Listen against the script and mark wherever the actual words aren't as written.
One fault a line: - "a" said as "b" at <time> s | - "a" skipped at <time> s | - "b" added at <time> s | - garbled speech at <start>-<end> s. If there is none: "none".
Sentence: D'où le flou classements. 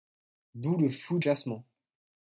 none